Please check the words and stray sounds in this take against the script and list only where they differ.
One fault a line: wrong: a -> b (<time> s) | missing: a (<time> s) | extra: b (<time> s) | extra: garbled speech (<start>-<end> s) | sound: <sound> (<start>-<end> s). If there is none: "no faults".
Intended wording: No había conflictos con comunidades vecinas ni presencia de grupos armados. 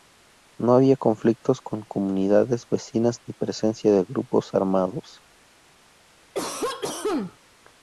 sound: cough (6.3-7.4 s)